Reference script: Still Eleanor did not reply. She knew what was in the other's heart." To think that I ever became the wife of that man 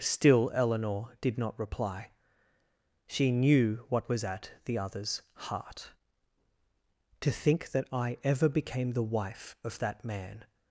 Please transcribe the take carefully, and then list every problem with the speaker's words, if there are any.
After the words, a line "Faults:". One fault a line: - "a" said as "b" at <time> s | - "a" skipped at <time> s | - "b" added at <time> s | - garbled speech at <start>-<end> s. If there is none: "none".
Still Eleanor did not reply. She knew what was at the other's heart." To think that I ever became the wife of that man
Faults:
- "in" said as "at" at 4.2 s